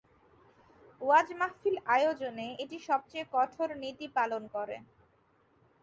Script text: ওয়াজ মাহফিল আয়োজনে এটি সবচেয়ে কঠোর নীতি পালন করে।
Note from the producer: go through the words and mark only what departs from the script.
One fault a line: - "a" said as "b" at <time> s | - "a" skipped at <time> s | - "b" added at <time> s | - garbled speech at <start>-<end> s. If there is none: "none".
none